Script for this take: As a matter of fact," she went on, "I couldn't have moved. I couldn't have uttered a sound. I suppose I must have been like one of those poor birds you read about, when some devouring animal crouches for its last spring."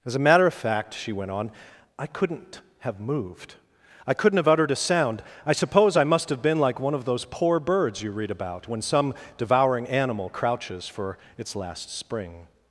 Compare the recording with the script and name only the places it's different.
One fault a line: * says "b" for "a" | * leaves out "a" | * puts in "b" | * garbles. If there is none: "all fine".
all fine